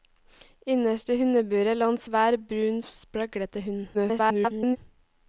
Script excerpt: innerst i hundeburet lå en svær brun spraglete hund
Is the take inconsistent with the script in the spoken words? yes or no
yes